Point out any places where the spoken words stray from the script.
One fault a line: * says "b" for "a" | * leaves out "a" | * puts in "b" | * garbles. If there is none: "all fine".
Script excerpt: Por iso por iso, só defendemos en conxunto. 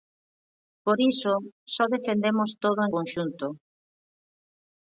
* leaves out "por iso"
* puts in "todo"